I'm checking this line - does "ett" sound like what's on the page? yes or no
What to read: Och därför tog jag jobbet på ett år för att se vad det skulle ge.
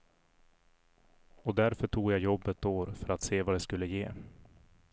no